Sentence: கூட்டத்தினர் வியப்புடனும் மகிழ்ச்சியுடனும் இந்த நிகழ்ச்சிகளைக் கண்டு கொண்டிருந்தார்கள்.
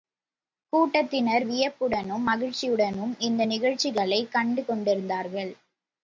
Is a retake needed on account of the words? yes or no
no